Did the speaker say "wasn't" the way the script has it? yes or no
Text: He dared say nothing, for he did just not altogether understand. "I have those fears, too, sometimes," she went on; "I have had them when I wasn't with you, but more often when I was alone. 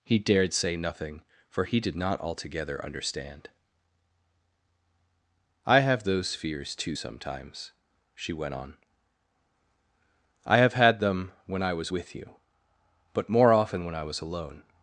no